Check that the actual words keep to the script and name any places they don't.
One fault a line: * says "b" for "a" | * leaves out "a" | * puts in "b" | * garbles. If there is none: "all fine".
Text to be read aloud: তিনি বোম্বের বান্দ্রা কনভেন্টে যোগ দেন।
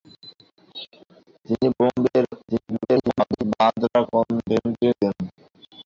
* garbles
* leaves out "যোগ"